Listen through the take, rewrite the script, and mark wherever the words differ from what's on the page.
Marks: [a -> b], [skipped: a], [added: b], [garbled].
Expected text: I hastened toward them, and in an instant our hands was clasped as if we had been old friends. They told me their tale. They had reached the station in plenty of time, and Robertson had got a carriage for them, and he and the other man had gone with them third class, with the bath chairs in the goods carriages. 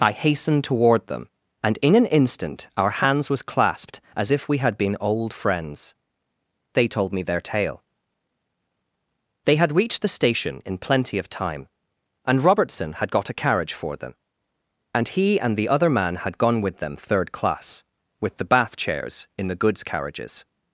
I hastened toward them, and in an instant our hands was clasped as if we had been old friends. They told me their tale. They had reached the station in plenty of time, and Robertson had got a carriage for them, and he and the other man had gone with them third class, with the bath chairs in the goods carriages.